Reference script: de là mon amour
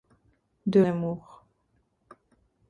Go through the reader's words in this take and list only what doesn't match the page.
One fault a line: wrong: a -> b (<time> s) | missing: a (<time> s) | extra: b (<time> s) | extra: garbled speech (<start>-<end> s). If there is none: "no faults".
missing: là mon (0.8 s)